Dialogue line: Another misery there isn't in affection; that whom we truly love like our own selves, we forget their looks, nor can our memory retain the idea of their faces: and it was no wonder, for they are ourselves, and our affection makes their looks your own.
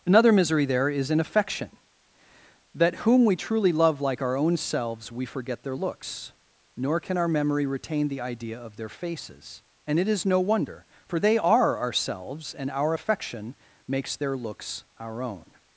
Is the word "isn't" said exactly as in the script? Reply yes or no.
no